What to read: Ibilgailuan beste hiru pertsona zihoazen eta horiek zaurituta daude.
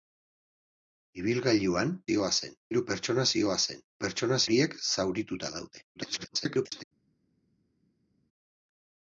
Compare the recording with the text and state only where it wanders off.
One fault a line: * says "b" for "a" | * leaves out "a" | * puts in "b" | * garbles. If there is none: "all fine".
* says "zihoazen" for "beste"
* says "pertsona" for "eta"
* garbles